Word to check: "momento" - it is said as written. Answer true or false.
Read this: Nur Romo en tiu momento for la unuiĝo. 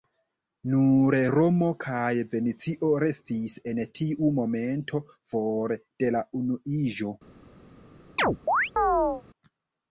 true